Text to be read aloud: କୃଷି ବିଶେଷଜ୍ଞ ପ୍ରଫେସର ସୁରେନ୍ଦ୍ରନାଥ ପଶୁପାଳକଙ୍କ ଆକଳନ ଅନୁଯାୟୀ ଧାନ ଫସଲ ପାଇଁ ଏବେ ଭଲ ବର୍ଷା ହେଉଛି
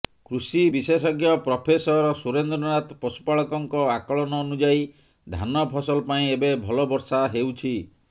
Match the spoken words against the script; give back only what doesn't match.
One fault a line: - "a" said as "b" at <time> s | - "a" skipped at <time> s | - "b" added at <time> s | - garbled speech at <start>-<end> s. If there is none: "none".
none